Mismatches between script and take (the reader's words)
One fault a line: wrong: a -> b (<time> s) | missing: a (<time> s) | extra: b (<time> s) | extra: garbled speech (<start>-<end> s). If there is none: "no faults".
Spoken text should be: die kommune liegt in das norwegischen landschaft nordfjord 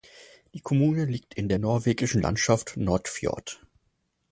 wrong: das -> der (1.5 s)